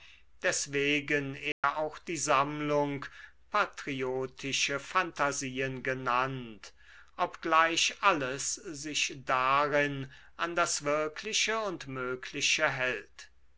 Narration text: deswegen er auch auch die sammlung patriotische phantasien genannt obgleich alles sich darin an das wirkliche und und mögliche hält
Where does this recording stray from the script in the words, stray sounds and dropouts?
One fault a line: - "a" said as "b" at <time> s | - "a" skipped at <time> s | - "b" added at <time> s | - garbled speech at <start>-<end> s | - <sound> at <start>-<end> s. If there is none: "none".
- dropout at 1.5-1.6 s
- "auch" skipped at 2.0 s
- "und" skipped at 11.9 s